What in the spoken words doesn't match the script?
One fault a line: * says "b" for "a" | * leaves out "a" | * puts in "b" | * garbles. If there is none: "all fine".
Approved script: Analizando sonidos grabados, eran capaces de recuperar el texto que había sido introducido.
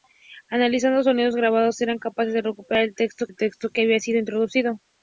* puts in "el texto"